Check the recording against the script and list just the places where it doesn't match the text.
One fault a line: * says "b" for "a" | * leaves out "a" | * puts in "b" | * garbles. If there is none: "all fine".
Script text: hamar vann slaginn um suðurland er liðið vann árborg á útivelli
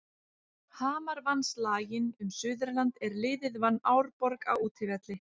all fine